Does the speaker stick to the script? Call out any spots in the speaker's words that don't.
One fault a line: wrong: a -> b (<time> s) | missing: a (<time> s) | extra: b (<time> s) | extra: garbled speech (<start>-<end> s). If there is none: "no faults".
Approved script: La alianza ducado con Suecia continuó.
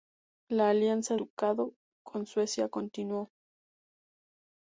no faults